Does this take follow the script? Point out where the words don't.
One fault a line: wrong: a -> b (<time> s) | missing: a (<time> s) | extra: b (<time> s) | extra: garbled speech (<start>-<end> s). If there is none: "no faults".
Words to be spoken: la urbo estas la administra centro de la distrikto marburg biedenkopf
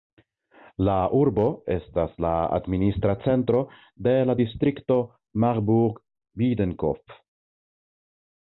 no faults